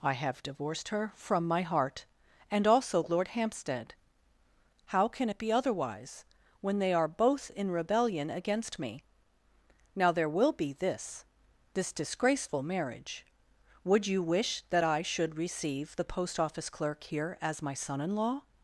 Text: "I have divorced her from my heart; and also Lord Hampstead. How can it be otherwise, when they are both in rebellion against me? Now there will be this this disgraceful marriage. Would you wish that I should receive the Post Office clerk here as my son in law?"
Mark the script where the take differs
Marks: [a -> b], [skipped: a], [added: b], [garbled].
"I have divorced her from my heart; and also Lord Hampstead. How can it be otherwise, when they are both in rebellion against me? Now there will be this this disgraceful marriage. Would you wish that I should receive the Post Office clerk here as my son in law?"